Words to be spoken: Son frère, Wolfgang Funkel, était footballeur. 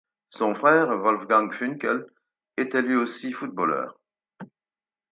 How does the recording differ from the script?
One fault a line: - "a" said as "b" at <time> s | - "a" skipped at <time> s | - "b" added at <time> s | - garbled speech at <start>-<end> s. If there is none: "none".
- "lui aussi" added at 2.8 s